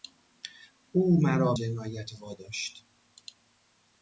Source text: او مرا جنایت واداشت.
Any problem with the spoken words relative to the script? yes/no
no